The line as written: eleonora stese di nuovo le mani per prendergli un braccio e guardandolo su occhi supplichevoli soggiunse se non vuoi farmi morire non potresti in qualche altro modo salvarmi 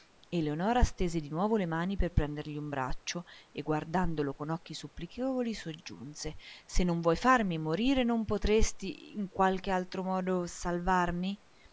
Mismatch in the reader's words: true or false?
true